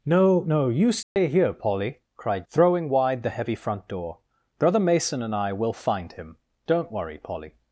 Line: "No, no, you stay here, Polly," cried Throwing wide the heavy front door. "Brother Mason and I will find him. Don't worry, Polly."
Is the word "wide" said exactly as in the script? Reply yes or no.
yes